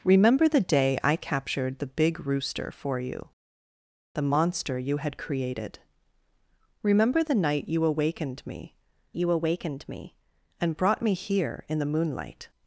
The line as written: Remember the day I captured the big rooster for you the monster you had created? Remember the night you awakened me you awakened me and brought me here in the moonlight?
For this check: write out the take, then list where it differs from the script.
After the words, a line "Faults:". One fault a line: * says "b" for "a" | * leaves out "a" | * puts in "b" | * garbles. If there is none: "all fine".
Remember the day I captured the big rooster for you the monster you had created? Remember the night you awakened me you awakened me and brought me here in the moonlight?
Faults:
all fine